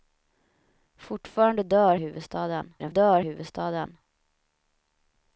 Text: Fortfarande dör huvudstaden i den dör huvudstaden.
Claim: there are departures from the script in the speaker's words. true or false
false